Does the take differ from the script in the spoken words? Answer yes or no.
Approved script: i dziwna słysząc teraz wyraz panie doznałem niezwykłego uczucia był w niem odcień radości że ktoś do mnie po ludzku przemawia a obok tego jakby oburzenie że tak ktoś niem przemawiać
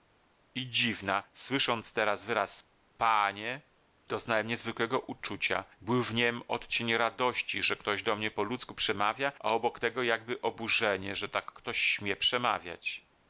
yes